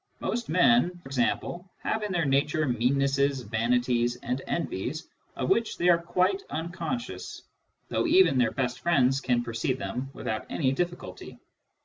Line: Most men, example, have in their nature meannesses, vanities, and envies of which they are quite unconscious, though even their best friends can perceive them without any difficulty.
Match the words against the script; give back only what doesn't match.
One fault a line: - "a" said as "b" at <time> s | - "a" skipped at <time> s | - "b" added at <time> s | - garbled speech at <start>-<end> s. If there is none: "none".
none